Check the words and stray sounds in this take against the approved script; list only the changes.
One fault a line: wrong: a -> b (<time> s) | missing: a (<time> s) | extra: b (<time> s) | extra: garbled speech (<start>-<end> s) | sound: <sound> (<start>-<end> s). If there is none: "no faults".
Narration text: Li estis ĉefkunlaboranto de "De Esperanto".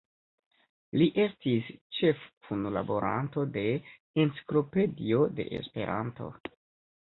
extra: Enciklopedio (4.2 s)